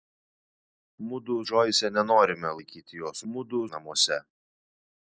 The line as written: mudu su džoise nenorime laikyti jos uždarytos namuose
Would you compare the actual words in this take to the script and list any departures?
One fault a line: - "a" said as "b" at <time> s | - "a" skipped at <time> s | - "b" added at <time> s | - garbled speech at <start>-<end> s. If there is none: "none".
- "su" skipped at 1.4 s
- "uždarytos" said as "mudu" at 3.3 s